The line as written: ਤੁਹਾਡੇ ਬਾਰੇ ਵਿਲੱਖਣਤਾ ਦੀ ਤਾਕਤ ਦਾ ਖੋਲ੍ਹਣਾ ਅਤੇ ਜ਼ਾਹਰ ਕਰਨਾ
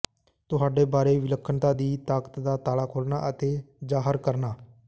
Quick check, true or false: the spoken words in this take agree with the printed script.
false